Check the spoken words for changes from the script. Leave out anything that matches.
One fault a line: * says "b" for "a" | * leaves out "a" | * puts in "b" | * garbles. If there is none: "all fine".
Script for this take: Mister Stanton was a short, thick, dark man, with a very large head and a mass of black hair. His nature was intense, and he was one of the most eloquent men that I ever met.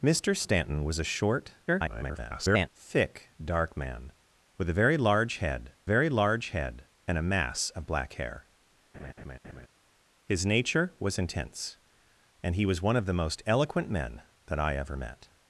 * garbles
* puts in "very large head"